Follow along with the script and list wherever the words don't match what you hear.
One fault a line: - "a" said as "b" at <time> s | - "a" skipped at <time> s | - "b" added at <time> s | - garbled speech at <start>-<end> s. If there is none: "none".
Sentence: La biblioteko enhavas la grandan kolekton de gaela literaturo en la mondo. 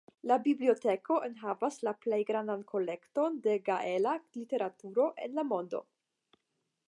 - "plej" added at 2.0 s